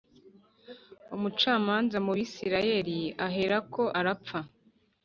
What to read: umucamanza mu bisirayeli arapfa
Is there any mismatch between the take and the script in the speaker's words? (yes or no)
yes